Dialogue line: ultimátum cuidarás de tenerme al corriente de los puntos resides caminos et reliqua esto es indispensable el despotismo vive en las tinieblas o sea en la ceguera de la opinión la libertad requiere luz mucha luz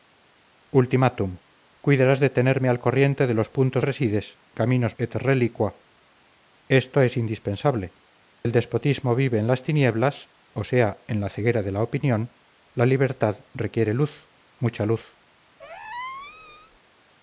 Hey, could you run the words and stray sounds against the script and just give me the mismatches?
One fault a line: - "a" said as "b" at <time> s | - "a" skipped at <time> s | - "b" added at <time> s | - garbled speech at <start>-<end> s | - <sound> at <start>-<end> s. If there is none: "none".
- squeak at 15.6-16.8 s